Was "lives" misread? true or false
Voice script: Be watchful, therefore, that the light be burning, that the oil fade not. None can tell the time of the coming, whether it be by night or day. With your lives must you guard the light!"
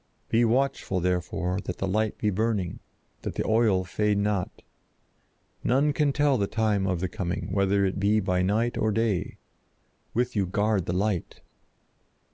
true